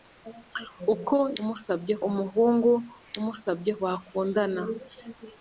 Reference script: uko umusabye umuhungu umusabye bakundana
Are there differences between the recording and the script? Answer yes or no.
no